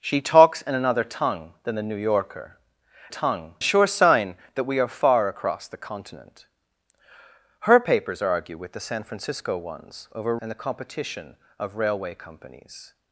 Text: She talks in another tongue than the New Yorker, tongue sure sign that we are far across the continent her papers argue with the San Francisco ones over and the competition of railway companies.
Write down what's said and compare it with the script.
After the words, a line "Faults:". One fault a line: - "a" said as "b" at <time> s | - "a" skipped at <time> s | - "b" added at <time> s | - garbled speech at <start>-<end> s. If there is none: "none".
She talks in another tongue than the New Yorker, tongue sure sign that we are far across the continent her papers argue with the San Francisco ones over and the competition of railway companies.
Faults:
none